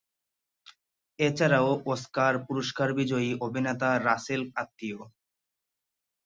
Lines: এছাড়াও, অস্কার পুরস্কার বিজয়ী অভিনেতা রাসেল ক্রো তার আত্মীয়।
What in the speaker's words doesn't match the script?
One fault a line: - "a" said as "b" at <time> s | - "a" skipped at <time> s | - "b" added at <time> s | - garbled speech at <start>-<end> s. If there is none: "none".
- "ক্রো তার" skipped at 4.4 s